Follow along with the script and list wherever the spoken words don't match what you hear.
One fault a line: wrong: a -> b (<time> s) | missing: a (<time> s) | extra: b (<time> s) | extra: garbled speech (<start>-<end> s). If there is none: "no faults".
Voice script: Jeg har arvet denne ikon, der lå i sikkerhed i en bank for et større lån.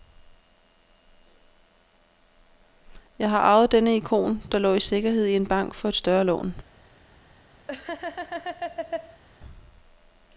no faults